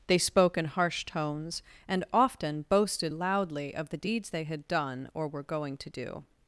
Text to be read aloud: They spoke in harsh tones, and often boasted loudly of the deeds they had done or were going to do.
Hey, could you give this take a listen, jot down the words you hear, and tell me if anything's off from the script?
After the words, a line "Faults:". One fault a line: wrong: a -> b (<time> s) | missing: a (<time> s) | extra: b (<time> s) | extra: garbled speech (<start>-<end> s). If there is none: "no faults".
They spoke in harsh tones, and often boasted loudly of the deeds they had done or were going to do.
Faults:
no faults